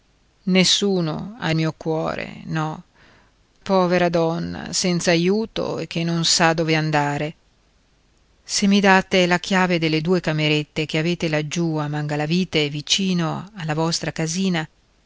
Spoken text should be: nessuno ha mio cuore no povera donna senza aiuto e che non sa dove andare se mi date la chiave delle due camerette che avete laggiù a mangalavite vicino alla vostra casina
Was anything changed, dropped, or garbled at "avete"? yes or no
no